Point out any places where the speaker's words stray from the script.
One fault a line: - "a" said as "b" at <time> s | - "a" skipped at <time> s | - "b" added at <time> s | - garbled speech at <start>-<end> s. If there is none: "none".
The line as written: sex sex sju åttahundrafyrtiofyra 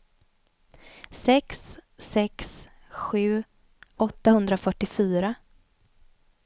none